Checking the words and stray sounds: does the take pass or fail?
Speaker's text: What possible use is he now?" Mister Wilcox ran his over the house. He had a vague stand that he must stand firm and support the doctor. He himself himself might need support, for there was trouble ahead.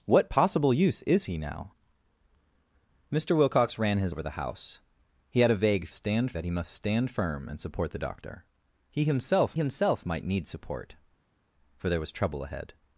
pass